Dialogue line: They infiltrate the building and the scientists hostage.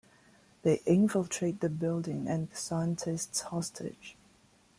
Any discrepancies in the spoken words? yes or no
no